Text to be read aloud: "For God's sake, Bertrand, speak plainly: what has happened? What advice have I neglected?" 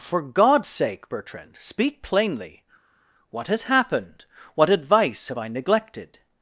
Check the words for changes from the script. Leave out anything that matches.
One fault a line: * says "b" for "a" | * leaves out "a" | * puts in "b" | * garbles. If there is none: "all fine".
all fine